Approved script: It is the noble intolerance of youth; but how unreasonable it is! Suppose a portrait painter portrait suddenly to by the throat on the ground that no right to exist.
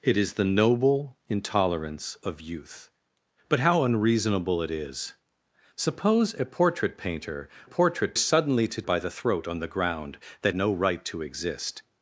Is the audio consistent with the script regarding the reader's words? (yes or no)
yes